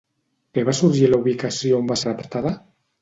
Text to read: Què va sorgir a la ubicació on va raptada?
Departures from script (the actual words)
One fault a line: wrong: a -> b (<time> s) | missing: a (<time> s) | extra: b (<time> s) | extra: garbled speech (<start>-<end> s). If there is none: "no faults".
no faults